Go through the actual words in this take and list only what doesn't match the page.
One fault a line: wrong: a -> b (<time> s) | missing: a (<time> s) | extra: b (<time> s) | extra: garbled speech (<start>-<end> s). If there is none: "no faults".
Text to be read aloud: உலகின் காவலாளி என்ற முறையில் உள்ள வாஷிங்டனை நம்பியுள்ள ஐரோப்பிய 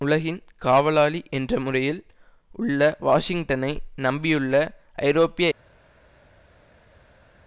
no faults